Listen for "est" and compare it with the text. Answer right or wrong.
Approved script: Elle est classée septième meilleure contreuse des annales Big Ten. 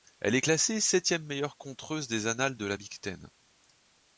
right